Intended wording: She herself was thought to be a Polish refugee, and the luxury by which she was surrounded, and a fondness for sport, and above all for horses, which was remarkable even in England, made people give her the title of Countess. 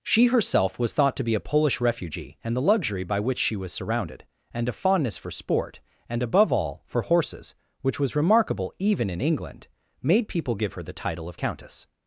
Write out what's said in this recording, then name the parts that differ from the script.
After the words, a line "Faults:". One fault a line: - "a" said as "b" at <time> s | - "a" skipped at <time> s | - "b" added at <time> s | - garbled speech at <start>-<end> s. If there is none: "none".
She herself was thought to be a Polish refugee, and the luxury by which she was surrounded, and a fondness for sport, and above all for horses, which was remarkable even in England, made people give her the title of Countess.
Faults:
none